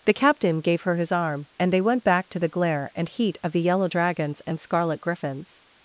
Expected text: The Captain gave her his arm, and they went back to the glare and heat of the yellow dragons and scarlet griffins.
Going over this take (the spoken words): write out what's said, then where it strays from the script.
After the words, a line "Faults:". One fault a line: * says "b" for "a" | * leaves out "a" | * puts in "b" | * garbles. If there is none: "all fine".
The Captain gave her his arm, and they went back to the glare and heat of the yellow dragons and scarlet griffins.
Faults:
all fine